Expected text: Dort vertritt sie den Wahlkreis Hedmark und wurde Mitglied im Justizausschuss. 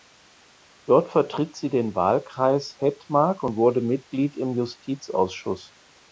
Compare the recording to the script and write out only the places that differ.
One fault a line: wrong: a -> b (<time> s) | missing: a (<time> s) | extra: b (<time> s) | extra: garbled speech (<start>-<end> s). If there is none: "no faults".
no faults